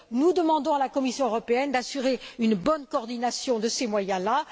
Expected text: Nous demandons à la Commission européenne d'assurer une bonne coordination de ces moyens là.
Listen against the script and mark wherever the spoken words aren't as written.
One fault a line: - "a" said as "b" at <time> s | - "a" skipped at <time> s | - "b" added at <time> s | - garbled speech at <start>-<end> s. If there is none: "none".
none